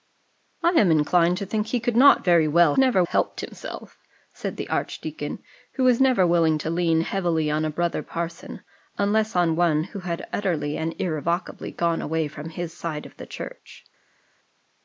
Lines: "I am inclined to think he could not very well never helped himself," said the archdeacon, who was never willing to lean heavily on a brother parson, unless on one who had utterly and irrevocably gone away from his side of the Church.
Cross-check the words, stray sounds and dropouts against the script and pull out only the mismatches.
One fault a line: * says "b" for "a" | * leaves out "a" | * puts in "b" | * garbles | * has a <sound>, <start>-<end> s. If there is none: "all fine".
all fine